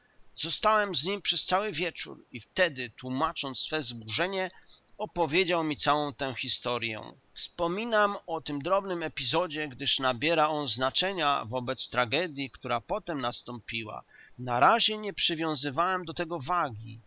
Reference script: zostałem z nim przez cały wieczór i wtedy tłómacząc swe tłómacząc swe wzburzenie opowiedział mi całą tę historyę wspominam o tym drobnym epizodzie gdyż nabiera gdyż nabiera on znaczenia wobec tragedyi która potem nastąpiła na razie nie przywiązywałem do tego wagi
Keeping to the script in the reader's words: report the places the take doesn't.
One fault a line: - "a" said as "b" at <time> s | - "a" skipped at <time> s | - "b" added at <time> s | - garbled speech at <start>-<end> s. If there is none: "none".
- "tłómacząc swe" skipped at 3.8 s
- "gdyż nabiera" skipped at 10.5 s